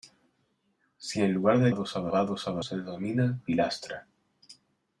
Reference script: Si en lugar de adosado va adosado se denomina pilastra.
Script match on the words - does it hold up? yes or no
yes